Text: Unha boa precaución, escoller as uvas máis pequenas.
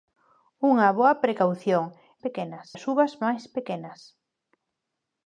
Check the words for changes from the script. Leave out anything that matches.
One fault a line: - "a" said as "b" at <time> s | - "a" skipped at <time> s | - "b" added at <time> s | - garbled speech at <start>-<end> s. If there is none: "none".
- "escoller" said as "pequenas" at 2.2 s